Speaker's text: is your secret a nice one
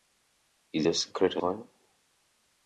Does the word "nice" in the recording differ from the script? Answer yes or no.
yes